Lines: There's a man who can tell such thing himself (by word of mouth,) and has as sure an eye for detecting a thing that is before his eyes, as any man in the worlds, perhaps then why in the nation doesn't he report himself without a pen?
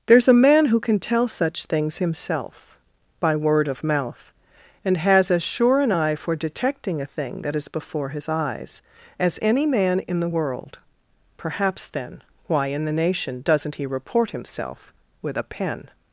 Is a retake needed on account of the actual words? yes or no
yes